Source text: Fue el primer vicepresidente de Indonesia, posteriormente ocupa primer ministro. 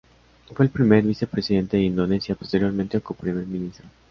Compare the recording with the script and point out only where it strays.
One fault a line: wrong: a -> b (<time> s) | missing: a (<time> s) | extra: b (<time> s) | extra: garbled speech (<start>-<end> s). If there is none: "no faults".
no faults